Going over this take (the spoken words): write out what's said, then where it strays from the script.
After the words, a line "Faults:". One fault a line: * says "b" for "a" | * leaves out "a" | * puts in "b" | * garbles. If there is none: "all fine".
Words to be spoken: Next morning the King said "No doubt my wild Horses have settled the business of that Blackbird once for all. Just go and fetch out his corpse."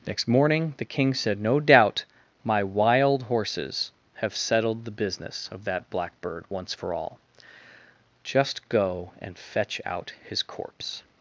Next morning the King said "No doubt my wild Horses have settled the business of that Blackbird once for all. Just go and fetch out his corpse."
Faults:
all fine